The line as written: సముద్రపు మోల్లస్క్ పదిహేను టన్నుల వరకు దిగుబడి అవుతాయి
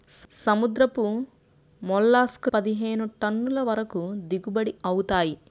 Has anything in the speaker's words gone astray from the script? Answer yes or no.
no